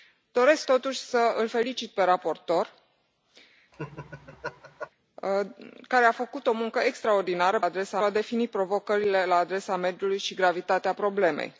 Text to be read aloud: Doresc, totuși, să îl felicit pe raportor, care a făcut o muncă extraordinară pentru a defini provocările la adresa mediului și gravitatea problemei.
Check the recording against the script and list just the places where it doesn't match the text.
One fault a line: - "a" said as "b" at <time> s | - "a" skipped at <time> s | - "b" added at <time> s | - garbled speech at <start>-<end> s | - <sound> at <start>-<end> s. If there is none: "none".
- laugh at 3.7-4.9 s
- "pentru" said as "adresa" at 7.6 s